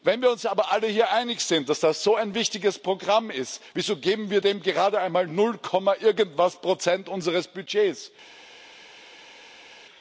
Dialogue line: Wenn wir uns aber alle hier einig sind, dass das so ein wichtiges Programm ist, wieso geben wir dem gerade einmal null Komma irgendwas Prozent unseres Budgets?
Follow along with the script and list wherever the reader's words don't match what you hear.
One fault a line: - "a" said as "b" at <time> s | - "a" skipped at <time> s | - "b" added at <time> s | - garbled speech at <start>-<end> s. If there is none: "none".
none